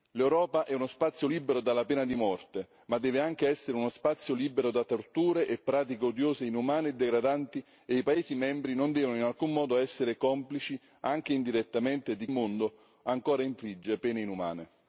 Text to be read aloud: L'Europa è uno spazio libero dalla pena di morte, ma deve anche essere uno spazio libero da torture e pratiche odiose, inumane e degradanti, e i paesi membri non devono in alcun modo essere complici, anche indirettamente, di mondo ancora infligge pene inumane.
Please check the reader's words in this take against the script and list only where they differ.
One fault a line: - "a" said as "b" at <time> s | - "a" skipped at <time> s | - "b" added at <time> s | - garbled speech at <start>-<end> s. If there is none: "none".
none